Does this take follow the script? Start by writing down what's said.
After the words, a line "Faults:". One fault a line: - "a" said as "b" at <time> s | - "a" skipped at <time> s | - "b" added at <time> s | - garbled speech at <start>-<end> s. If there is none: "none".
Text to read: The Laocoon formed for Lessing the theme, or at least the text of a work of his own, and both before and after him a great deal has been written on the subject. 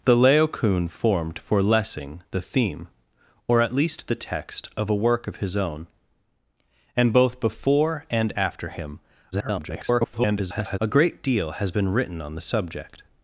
The Laocoon formed for Lessing the theme, or at least the text of a work of his own, and both before and after him [garbled] a great deal has been written on the subject.
Faults:
- garbled speech at 9.3-10.8 s